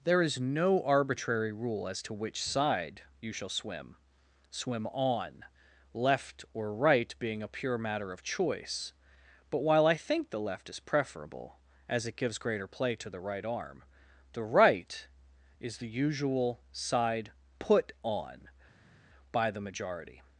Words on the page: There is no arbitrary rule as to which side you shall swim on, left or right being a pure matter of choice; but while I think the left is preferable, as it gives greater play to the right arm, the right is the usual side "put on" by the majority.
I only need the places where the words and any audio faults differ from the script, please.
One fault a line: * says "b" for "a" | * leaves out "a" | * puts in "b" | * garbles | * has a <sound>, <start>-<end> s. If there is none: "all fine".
* puts in "swim"